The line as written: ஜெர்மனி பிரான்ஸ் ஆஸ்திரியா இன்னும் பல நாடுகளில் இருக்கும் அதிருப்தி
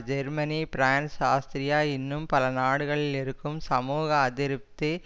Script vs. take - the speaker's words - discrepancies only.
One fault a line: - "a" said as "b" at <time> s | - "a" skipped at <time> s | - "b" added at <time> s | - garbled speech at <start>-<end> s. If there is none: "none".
- "சமூக" added at 3.7 s